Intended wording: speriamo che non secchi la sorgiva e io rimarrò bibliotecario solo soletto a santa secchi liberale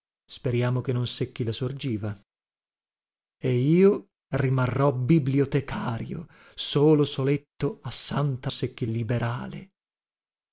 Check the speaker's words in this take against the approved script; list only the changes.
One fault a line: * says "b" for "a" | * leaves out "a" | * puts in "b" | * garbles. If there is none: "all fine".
all fine